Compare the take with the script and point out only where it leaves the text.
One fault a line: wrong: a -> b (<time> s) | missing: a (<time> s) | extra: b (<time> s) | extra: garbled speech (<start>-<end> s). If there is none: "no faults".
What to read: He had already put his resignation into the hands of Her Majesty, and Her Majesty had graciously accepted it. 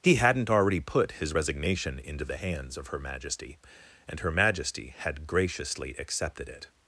wrong: had -> hadn't (0.1 s)